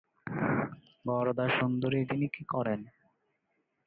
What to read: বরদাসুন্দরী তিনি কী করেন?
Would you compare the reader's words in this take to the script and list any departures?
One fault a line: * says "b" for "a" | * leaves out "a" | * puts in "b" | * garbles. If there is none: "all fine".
all fine